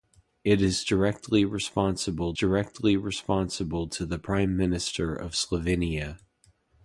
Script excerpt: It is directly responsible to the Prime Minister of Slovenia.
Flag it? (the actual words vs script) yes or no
yes